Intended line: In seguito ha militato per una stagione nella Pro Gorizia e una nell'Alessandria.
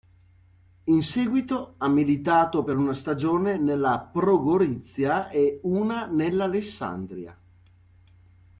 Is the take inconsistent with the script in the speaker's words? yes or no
no